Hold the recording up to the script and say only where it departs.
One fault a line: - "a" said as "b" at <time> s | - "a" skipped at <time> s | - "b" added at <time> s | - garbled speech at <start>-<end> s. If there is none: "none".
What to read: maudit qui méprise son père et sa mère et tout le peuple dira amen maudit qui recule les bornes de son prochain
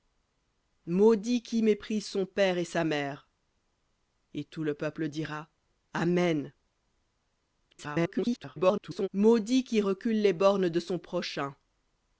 - garbled speech at 7.7-9.1 s